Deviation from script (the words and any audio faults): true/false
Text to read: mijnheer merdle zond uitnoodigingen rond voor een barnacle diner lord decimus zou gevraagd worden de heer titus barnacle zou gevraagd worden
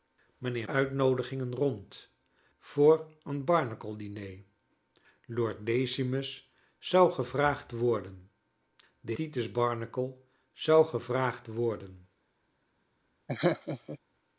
true